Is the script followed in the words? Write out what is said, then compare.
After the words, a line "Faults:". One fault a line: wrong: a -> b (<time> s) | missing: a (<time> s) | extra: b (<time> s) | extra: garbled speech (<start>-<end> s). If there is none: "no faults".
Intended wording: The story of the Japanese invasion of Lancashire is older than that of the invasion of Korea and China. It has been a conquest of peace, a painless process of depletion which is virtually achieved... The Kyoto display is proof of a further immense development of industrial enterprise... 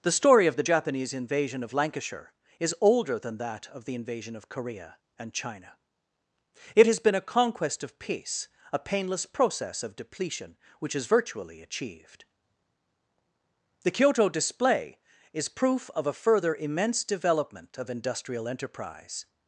The story of the Japanese invasion of Lancashire is older than that of the invasion of Korea and China. It has been a conquest of peace, a painless process of depletion which is virtually achieved... The Kyoto display is proof of a further immense development of industrial enterprise...
Faults:
no faults